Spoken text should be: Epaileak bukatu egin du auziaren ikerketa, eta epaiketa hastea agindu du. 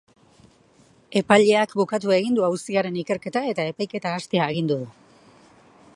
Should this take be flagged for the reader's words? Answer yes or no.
no